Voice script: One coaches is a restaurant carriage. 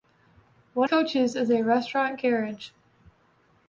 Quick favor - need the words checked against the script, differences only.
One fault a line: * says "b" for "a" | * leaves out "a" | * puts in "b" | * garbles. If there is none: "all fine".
all fine